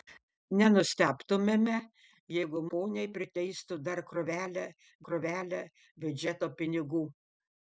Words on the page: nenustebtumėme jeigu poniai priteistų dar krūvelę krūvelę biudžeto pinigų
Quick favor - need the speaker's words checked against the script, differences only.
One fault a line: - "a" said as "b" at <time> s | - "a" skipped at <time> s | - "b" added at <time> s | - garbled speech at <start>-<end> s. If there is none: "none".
none